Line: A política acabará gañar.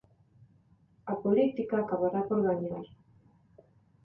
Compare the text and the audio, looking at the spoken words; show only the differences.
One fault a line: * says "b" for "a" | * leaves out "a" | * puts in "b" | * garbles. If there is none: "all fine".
* puts in "por"